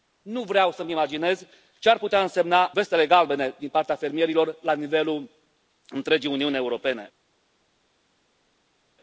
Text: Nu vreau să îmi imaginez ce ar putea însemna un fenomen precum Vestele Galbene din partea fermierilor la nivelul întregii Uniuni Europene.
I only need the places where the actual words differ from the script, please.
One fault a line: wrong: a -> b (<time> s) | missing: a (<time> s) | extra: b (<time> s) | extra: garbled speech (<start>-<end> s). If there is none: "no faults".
missing: un fenomen precum (2.7 s)